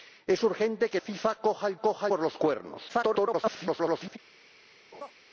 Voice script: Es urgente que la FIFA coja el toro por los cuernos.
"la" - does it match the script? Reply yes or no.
no